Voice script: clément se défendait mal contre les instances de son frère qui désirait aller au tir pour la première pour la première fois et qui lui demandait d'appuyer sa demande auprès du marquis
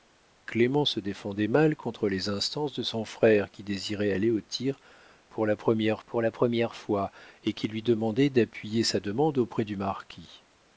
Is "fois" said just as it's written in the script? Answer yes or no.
yes